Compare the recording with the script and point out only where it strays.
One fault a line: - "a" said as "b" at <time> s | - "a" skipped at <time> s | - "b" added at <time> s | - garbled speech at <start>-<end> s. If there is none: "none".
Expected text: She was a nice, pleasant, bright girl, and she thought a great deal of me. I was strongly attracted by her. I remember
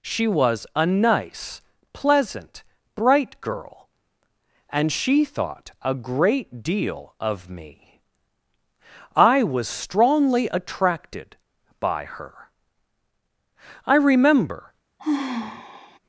none